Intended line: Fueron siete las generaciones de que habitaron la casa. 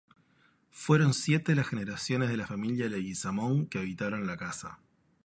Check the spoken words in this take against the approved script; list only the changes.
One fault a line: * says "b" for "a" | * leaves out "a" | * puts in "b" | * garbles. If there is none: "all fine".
* puts in "la familia Leguizamón"